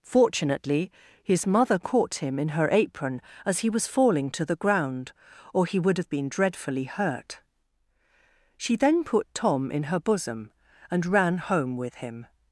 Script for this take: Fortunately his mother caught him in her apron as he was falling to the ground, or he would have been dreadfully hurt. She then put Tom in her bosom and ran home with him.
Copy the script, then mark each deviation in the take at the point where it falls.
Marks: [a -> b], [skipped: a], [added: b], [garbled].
Fortunately his mother caught him in her apron as he was falling to the ground, or he would have been dreadfully hurt. She then put Tom in her bosom and ran home with him.